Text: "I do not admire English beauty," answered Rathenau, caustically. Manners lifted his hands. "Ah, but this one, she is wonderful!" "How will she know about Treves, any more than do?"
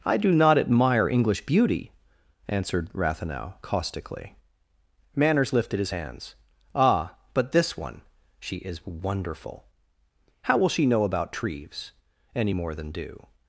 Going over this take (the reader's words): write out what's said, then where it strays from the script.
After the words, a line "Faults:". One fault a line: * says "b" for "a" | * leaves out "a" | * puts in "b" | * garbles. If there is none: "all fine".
"I do not admire English beauty," answered Rathenau, caustically. Manners lifted his hands. "Ah, but this one, she is wonderful!" "How will she know about Treves, any more than do?"
Faults:
all fine